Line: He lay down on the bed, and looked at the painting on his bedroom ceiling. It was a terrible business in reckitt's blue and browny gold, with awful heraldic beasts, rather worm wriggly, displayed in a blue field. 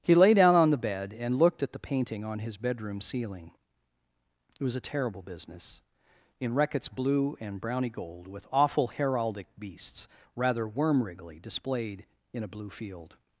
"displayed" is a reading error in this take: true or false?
false